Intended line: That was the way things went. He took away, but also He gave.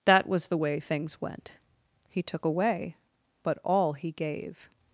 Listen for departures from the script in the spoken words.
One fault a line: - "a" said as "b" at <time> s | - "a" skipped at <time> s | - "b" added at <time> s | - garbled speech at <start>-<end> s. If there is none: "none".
- "also" said as "all" at 3.6 s